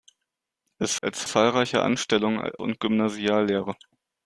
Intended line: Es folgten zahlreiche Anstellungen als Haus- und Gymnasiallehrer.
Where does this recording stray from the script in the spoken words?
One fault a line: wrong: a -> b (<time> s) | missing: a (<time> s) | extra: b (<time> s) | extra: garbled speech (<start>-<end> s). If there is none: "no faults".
wrong: folgten -> als (1.0 s)
missing: als Haus (2.5 s)